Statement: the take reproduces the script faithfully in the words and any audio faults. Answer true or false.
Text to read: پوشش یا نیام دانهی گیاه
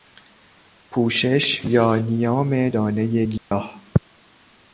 false